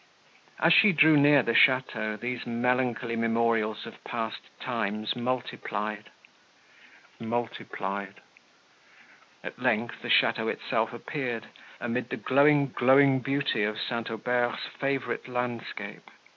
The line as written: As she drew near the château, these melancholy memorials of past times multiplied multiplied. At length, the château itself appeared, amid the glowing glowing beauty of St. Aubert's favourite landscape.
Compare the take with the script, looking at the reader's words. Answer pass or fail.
pass